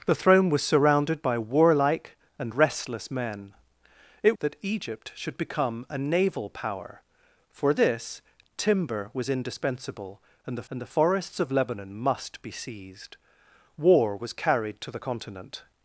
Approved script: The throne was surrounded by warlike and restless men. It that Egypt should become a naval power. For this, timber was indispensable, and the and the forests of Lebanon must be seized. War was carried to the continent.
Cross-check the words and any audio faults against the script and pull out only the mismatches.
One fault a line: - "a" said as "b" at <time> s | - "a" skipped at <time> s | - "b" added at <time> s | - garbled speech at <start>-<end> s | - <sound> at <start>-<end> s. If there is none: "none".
none